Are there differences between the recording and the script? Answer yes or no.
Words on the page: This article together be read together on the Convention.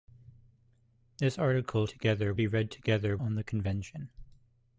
no